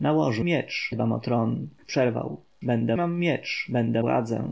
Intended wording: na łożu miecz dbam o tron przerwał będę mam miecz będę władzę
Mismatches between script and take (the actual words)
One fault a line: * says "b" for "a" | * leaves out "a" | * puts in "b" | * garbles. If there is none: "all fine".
all fine